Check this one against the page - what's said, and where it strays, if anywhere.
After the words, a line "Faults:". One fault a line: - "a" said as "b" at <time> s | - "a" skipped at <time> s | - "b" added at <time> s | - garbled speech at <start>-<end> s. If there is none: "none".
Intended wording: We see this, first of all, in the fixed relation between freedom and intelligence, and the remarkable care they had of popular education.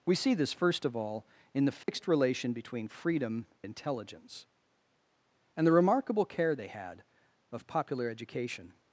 We see this, first of all, in the fixed relation between freedom intelligence, and the remarkable care they had of popular education.
Faults:
- "and" skipped at 3.5 s